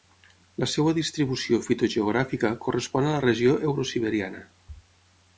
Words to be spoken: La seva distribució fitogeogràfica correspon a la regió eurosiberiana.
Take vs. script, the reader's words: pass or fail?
pass